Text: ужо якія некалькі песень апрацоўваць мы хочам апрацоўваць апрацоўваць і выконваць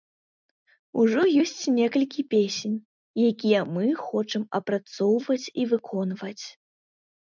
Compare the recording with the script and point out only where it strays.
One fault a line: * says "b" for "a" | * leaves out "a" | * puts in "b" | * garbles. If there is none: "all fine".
* says "ёсць" for "якія"
* says "якія" for "апрацоўваць"
* leaves out "апрацоўваць"